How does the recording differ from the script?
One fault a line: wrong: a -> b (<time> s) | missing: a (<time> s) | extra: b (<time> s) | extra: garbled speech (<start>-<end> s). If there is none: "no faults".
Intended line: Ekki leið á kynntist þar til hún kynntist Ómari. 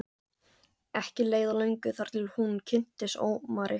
wrong: kynntist -> löngu (1.6 s)